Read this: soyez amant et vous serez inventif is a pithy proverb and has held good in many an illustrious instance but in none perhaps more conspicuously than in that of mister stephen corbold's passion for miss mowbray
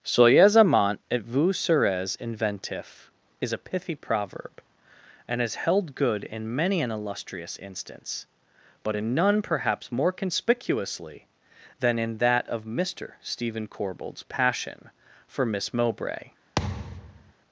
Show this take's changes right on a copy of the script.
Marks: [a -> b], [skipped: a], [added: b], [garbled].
soyez amant et vous serez inventif is a pithy proverb and has held good in many an illustrious instance but in none perhaps more conspicuously than in that of mister stephen corbold's passion for miss mowbray